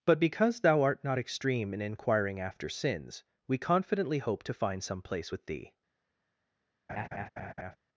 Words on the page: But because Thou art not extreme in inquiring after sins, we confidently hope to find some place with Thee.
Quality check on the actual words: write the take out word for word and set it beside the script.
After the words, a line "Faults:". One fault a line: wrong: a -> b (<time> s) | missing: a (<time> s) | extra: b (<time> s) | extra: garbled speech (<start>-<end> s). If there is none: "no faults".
But because Thou art not extreme in inquiring after sins, we confidently hope to find some place with Thee.
Faults:
no faults